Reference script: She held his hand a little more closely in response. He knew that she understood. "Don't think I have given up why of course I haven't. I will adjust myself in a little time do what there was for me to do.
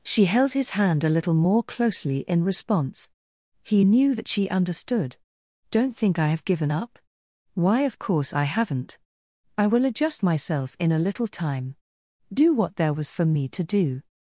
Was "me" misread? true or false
false